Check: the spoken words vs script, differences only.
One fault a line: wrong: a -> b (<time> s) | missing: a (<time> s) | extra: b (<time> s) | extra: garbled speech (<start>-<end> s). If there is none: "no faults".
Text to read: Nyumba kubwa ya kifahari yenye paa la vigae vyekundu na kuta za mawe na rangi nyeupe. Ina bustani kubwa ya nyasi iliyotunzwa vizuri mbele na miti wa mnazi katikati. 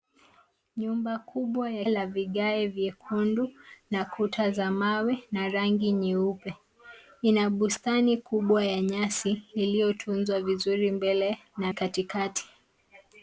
missing: kifahari yenye paa (1.9 s)
missing: miti wa mnazi (11.7 s)